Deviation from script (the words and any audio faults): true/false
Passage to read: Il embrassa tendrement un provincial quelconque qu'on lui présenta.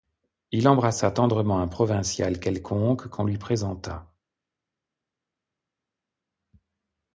false